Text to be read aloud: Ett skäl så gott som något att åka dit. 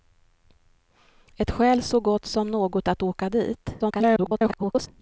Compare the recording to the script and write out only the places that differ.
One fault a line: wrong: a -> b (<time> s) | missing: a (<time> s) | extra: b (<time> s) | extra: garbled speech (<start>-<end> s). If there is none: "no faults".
extra: garbled speech (3.8-4.9 s)